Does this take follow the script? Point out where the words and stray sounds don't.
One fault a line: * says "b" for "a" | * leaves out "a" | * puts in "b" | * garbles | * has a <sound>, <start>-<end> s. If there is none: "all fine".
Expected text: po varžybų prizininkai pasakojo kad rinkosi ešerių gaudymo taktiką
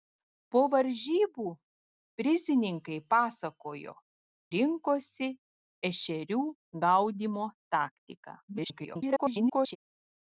* leaves out "kad"
* garbles